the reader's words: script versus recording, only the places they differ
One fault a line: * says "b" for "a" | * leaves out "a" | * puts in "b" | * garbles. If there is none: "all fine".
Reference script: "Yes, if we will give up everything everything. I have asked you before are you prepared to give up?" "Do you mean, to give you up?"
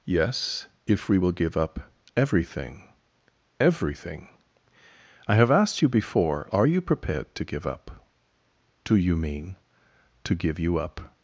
all fine